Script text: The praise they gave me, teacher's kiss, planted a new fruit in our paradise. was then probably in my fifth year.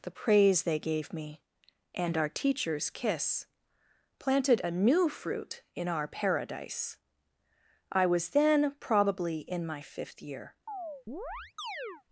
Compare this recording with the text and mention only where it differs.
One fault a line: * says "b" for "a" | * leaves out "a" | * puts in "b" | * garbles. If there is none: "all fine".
* puts in "and our"
* puts in "I"